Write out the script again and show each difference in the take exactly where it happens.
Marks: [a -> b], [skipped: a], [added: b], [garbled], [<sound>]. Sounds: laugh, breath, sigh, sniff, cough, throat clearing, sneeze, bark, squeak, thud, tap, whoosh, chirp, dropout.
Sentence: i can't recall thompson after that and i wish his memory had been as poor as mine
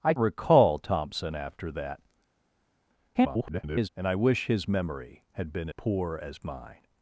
i [skipped: can't] recall thompson after that [garbled] and i wish his memory had been [skipped: as] poor as mine